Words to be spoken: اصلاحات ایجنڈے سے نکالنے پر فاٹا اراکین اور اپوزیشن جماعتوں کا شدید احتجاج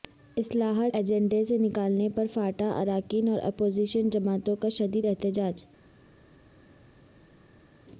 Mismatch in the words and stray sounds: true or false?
false